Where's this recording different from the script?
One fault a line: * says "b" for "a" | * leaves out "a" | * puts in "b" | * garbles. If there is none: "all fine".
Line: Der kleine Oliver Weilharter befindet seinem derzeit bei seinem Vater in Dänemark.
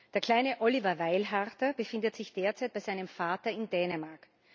* says "sich" for "seinem"